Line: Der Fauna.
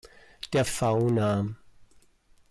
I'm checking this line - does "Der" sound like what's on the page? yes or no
yes